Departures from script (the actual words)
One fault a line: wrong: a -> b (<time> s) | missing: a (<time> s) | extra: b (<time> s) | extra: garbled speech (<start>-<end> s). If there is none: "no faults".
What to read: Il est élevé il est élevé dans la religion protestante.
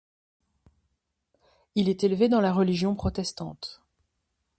missing: il est élevé (2.3 s)